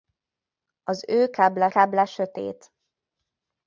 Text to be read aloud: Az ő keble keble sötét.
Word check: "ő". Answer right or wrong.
right